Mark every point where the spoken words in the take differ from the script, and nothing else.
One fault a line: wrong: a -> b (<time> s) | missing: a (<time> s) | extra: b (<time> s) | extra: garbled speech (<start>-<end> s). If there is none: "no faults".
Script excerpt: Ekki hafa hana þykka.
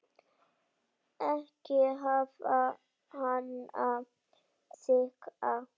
no faults